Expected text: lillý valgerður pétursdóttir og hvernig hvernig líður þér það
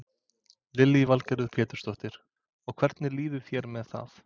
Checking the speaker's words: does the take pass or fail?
fail